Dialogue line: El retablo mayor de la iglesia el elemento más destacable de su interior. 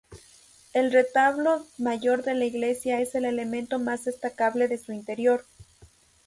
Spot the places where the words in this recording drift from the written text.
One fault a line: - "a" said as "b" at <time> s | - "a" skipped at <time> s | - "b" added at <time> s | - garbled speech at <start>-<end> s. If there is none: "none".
- "es" added at 3.0 s